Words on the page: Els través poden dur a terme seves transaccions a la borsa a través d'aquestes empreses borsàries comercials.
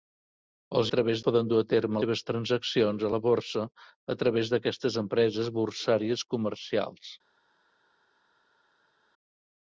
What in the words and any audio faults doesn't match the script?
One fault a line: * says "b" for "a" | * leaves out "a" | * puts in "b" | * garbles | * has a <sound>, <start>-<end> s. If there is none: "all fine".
all fine